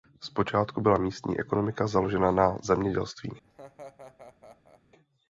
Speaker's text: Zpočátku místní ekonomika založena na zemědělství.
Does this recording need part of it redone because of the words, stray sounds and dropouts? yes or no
yes